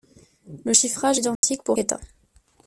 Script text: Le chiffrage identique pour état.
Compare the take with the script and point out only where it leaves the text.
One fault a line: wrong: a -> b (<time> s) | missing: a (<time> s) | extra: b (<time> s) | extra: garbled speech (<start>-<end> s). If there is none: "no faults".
no faults